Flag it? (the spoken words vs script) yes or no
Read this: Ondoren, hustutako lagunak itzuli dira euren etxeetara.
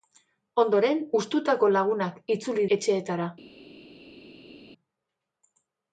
yes